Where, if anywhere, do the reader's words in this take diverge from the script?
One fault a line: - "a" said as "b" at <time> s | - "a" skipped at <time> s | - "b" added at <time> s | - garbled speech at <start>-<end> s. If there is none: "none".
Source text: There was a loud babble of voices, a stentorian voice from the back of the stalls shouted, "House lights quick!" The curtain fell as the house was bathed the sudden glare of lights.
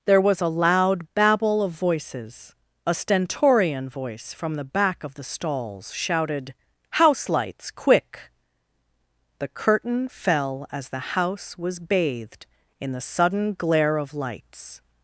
- "in" added at 12.8 s